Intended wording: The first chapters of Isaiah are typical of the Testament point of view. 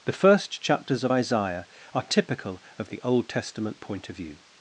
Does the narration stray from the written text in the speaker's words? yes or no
yes